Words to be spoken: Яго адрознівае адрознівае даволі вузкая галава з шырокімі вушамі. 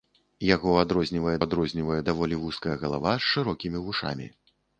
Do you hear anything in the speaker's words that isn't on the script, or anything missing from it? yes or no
no